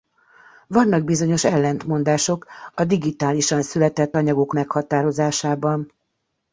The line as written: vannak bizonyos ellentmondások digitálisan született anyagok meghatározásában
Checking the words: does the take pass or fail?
fail